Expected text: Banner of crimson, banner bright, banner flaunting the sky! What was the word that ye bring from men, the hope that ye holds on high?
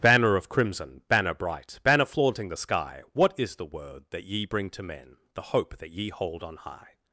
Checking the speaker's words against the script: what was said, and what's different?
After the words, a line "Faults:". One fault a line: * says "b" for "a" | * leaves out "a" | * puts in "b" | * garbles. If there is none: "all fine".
Banner of crimson, banner bright, banner flaunting the sky! What is the word that ye bring to men, the hope that ye hold on high?
Faults:
* says "is" for "was"
* says "to" for "from"
* says "hold" for "holds"